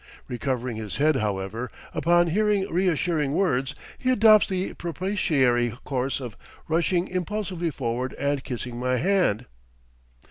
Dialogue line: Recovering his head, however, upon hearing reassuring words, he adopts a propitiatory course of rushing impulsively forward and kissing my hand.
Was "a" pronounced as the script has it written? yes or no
no